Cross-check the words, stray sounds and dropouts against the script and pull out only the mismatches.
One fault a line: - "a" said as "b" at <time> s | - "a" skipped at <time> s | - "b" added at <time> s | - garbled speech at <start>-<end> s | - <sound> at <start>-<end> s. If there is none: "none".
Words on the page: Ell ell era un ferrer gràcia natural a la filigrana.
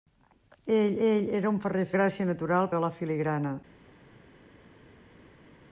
none